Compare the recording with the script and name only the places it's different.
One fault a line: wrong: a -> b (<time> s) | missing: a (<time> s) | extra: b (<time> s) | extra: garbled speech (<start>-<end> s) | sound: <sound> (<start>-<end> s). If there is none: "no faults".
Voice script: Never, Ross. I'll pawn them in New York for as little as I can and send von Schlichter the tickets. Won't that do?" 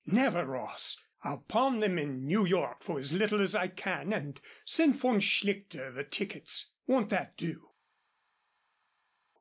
no faults